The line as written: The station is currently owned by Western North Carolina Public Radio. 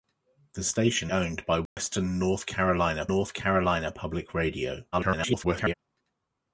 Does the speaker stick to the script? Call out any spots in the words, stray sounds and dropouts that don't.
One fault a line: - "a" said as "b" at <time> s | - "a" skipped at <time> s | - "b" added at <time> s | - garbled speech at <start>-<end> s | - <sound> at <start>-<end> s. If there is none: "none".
- "is currently" skipped at 1.1 s
- dropout at 1.7-1.8 s
- "North Carolina" added at 3.1 s
- garbled speech at 4.9-5.7 s